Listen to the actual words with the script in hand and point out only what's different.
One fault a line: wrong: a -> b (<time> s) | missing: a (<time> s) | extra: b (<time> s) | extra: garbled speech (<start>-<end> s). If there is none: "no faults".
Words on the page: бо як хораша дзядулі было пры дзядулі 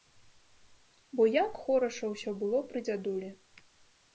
wrong: дзядулі -> ўсё (2.1 s)